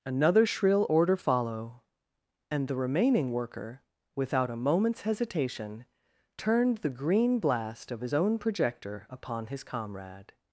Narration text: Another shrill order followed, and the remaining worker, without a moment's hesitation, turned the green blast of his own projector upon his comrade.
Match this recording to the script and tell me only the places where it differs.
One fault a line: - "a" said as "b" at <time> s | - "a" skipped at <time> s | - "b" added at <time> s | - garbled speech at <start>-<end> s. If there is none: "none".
- "followed" said as "follow" at 1.2 s